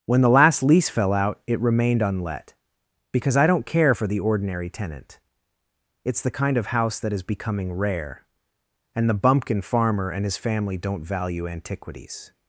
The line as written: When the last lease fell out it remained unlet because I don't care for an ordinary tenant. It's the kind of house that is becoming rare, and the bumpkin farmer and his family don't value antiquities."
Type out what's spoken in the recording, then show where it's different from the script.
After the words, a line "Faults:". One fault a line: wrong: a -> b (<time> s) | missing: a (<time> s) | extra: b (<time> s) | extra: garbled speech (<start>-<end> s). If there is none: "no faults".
When the last lease fell out it remained unlet because I don't care for the ordinary tenant. It's the kind of house that is becoming rare, and the bumpkin farmer and his family don't value antiquities."
Faults:
wrong: an -> the (4.1 s)